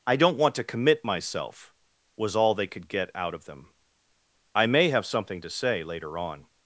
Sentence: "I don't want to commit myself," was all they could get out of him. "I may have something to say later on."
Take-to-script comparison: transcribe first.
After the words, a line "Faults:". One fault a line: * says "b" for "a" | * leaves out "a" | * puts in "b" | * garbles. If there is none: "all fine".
"I don't want to commit myself," was all they could get out of them. "I may have something to say later on."
Faults:
* says "them" for "him"